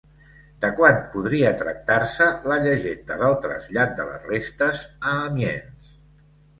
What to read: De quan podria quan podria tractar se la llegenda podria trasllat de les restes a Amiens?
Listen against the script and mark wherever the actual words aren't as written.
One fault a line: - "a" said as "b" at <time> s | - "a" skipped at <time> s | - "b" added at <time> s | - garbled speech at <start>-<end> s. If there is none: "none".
- "quan podria" skipped at 1.5 s
- "podria" said as "del" at 3.2 s